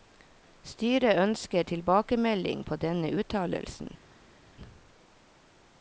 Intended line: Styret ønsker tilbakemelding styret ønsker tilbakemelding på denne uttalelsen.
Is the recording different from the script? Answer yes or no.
yes